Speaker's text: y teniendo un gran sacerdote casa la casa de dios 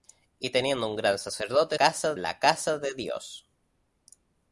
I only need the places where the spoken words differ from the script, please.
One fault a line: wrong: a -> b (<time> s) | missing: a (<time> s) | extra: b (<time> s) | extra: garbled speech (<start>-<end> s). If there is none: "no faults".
no faults